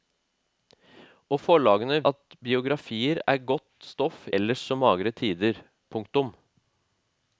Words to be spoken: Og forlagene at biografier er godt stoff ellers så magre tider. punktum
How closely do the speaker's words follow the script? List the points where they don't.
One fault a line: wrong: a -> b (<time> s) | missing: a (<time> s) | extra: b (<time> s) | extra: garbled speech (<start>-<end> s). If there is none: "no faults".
no faults